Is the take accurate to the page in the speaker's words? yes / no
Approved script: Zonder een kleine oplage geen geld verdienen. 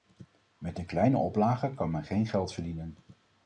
no